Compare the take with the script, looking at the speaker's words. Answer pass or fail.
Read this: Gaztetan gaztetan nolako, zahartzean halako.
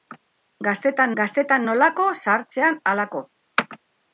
pass